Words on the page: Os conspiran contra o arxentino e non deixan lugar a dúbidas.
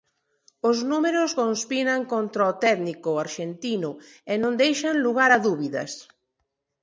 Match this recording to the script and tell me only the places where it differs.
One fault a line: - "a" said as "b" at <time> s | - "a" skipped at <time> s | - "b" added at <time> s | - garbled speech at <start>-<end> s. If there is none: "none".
- "números" added at 0.9 s
- "técnico" added at 2.6 s